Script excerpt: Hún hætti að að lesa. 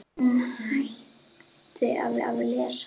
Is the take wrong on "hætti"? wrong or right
right